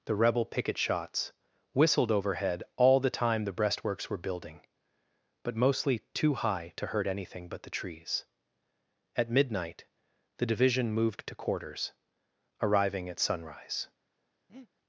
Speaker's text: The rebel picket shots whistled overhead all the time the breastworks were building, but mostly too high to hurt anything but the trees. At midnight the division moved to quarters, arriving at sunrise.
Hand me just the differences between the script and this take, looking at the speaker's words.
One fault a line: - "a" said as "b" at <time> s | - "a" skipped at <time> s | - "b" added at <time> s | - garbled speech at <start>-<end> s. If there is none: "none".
none